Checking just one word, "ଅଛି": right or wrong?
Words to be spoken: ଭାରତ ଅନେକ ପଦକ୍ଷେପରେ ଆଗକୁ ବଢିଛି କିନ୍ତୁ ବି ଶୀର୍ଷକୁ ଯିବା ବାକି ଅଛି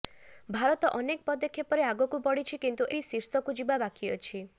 right